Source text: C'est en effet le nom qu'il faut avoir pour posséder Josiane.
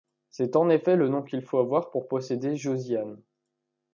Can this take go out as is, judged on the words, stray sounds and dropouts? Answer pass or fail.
pass